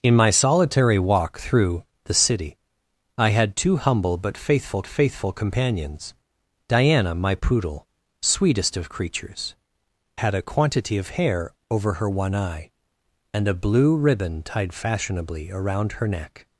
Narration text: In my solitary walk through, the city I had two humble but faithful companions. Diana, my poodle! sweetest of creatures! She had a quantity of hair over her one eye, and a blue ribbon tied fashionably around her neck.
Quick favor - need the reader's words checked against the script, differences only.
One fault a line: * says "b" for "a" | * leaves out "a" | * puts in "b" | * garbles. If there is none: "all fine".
* puts in "faithful"
* leaves out "She"